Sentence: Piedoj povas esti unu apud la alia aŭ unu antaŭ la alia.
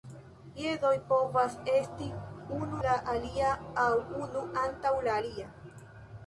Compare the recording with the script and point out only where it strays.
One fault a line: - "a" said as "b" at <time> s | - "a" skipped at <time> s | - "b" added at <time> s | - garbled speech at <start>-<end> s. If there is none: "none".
- "apud" skipped at 2.8 s